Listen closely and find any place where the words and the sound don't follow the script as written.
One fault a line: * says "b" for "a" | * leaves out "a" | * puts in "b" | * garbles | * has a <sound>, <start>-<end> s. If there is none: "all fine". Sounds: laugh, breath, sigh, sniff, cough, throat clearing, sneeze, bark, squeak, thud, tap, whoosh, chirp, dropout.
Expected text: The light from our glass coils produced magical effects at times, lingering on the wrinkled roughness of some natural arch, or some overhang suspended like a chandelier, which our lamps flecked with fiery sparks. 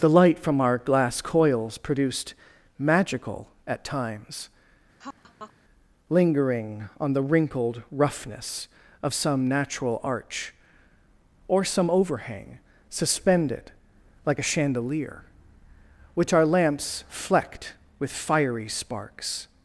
* leaves out "effects"
* has a laugh, 5.0-5.5 s